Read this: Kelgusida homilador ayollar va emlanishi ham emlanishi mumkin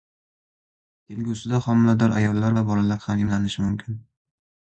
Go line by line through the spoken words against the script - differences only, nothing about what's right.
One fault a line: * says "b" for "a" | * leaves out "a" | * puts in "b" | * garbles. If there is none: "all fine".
* says "bolalar" for "emlanishi"